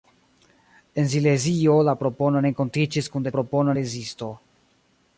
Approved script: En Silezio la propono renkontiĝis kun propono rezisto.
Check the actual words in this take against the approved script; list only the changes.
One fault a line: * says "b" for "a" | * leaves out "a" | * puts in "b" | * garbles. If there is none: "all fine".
all fine